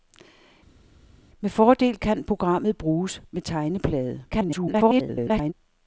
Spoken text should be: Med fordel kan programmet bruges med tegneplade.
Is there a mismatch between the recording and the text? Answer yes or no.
yes